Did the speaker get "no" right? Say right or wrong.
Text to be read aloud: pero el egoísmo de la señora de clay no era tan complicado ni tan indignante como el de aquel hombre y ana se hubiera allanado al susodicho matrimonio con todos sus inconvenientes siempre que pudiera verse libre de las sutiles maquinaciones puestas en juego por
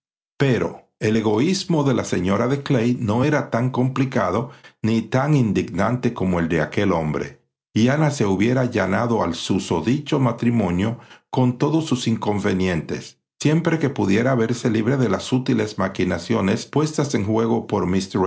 right